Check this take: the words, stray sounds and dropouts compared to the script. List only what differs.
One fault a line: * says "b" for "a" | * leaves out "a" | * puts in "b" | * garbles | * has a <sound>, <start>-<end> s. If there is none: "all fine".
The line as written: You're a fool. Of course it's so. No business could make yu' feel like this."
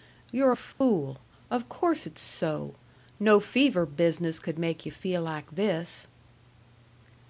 * has a dropout, 0.7-0.8 s
* puts in "fever"